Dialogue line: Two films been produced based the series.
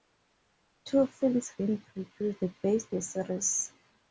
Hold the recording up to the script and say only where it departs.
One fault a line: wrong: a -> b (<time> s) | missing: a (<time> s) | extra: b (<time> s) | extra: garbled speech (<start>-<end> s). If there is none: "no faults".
no faults